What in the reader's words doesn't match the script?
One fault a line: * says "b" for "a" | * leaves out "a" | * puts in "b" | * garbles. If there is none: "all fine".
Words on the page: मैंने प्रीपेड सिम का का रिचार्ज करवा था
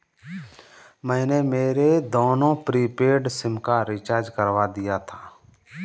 * puts in "मेरे दोनों"
* leaves out "का"
* puts in "दिया"